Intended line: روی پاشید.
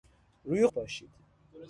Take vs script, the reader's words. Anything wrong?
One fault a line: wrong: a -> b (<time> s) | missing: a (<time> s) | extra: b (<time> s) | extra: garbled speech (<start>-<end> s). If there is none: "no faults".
no faults